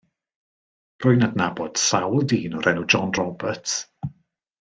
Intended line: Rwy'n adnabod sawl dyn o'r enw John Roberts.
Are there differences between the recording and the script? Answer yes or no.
no